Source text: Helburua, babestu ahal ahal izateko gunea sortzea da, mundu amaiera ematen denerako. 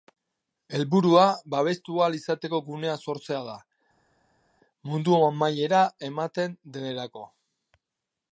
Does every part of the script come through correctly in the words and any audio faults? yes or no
no